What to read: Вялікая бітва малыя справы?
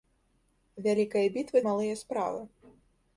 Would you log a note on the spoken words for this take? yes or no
no